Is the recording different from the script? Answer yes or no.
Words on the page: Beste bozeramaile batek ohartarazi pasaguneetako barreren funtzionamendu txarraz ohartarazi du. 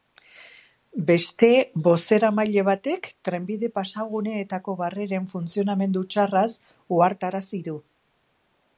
yes